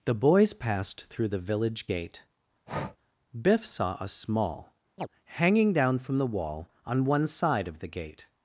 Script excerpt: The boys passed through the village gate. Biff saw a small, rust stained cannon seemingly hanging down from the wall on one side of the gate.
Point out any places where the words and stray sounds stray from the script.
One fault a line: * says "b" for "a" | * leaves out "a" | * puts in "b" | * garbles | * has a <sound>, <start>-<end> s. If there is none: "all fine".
* has a breath, 2.7-3.0 s
* leaves out "rust stained cannon seemingly"
* has a chirp, 5.0-5.1 s